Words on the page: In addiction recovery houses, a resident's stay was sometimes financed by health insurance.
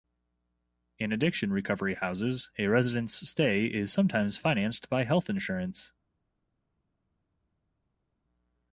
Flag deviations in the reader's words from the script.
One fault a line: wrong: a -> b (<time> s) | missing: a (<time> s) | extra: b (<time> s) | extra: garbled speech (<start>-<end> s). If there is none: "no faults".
wrong: was -> is (3.7 s)